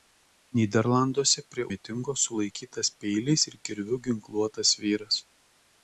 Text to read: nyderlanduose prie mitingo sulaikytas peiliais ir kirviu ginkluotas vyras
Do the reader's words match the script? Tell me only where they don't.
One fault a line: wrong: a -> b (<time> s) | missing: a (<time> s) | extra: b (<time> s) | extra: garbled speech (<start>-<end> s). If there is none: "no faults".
no faults